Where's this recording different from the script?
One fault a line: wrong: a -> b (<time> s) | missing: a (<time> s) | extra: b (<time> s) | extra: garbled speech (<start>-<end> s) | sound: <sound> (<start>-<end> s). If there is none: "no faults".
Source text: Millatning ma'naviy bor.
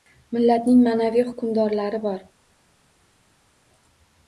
extra: hukmdorlari (1.3 s)